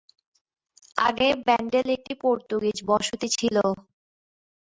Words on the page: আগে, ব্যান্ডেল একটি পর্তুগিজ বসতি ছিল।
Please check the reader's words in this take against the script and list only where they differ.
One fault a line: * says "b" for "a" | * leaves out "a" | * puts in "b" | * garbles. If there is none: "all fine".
all fine